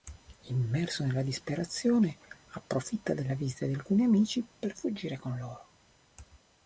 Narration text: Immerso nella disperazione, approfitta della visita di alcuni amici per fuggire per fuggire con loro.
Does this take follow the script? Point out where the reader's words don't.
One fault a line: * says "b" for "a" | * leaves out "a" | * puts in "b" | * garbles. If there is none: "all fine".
* leaves out "per fuggire"